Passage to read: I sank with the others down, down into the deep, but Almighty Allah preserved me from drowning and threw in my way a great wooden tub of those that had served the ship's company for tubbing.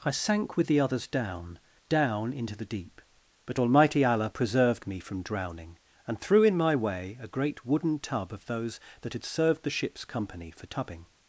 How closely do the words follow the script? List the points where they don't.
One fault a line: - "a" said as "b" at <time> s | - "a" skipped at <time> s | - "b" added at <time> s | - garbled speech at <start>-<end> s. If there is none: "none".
none